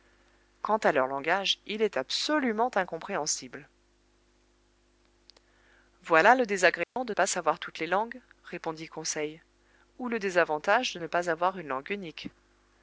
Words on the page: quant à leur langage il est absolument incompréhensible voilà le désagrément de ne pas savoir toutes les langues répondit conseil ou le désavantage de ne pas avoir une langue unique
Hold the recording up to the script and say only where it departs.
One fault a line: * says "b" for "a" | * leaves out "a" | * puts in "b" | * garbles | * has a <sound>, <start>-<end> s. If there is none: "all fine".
* has a dropout, 6.8-7.0 s
* leaves out "ne"